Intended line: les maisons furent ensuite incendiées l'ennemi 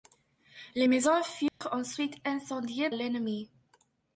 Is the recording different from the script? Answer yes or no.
no